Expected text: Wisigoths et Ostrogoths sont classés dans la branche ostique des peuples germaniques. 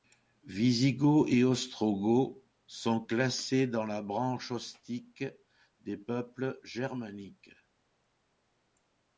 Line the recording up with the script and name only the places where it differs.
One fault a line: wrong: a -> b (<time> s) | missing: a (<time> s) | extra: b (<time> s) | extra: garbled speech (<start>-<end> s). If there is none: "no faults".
no faults